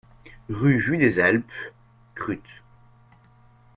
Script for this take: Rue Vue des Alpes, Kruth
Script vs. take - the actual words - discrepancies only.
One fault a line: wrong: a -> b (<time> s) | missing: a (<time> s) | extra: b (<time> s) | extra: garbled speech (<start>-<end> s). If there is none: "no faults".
no faults